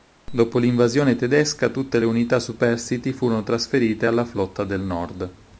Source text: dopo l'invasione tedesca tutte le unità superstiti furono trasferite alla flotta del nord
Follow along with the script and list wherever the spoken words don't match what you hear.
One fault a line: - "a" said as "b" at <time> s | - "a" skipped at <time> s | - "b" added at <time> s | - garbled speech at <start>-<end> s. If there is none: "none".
none